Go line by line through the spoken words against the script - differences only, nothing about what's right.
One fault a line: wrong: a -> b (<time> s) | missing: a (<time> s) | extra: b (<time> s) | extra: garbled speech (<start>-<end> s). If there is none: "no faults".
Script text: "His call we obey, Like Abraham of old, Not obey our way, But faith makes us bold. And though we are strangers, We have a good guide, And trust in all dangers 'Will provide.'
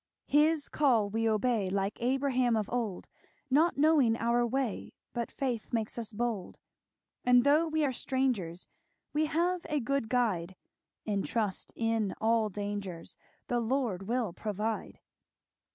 wrong: obey -> knowing (3.8 s)
extra: The Lord (13.5 s)